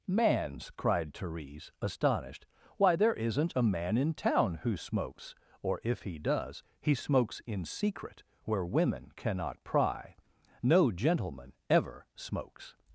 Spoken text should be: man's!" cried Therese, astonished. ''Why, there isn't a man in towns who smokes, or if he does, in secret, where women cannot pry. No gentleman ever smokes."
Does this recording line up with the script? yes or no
no